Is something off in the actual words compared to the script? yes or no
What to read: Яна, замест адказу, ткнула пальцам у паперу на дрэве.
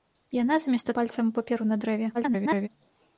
yes